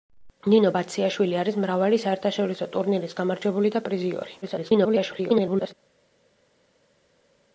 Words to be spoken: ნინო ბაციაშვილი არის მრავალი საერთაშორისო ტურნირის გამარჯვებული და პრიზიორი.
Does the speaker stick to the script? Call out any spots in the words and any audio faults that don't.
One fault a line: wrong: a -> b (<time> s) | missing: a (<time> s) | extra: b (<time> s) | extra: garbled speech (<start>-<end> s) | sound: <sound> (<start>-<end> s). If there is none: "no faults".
extra: garbled speech (4.4-5.7 s)